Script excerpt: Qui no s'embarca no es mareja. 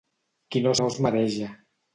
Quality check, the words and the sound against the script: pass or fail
fail